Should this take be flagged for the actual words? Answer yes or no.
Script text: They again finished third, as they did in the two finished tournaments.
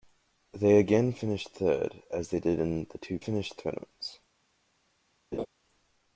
no